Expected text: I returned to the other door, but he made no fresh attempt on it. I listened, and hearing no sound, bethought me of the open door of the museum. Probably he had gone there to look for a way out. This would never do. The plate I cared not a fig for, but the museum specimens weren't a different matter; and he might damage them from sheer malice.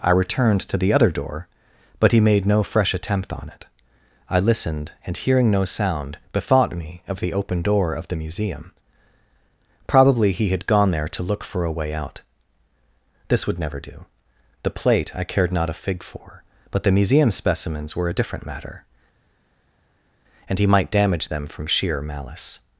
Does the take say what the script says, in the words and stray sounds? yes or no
no